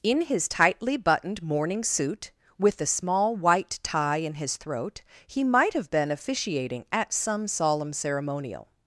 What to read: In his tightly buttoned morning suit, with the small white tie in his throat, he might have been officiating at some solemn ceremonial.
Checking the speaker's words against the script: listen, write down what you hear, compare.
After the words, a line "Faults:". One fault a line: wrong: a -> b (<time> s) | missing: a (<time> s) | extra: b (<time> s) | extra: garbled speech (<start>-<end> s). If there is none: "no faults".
In his tightly buttoned morning suit, with the small white tie in his throat, he might have been officiating at some solemn ceremonial.
Faults:
no faults